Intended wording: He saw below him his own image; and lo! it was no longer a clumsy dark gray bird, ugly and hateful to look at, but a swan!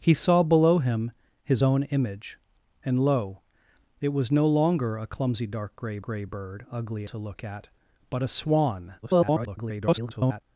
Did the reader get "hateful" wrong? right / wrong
wrong